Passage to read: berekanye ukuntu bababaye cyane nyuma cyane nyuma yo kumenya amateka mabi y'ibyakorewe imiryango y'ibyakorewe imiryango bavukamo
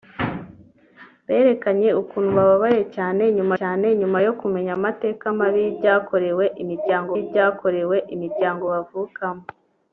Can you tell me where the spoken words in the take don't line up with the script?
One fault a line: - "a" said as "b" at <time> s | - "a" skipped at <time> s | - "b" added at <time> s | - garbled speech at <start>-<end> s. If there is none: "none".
none